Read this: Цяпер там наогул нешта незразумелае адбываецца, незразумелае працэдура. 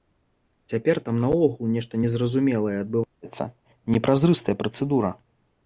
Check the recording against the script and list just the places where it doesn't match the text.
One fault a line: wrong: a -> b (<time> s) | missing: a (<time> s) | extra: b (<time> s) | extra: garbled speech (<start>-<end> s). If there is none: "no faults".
wrong: незразумелае -> непразрыстая (4.0 s)